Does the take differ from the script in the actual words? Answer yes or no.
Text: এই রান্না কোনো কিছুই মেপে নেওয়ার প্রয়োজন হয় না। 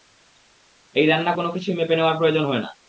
no